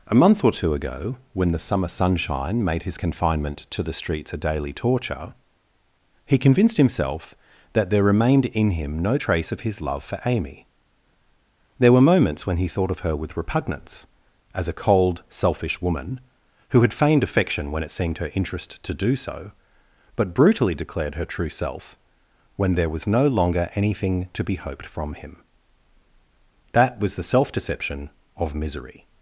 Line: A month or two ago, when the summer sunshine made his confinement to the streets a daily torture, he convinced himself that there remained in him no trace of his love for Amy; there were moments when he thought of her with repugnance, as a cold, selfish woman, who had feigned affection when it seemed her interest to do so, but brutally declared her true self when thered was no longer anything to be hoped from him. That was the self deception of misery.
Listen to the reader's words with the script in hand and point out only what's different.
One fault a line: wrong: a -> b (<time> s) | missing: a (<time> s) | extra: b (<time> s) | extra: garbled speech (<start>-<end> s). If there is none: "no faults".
wrong: thered -> there (22.8 s)